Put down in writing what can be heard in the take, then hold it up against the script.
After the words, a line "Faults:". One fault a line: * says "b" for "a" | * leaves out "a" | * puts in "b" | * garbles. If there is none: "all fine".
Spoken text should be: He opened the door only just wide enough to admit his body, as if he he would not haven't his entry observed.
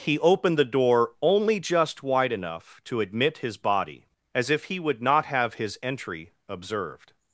He opened the door only just wide enough to admit his body, as if he would not have his entry observed.
Faults:
* leaves out "he"
* says "have" for "haven't"